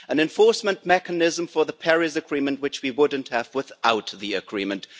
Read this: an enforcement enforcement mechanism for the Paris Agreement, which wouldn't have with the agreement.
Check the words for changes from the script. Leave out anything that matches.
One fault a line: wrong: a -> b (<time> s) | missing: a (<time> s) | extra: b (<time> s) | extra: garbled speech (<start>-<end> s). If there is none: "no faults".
missing: enforcement (0.8 s)
extra: we (2.8 s)
wrong: with -> without (3.5 s)